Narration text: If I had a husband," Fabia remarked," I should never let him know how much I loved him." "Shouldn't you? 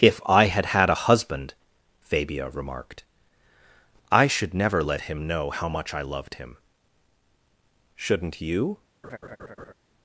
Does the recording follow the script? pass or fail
fail